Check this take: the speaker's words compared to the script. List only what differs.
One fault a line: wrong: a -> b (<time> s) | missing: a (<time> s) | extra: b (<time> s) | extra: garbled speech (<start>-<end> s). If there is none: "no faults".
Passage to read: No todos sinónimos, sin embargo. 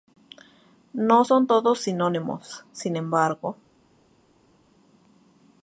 extra: son (1.2 s)